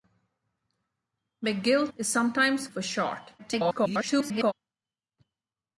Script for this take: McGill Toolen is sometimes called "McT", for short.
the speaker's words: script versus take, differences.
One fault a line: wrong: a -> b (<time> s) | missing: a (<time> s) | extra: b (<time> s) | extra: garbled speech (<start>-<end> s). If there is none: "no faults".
missing: Toolen (1.9 s)
missing: called McT (2.7 s)
extra: garbled speech (3.4-4.5 s)